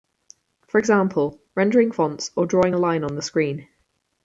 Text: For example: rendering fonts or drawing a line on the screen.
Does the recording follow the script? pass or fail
pass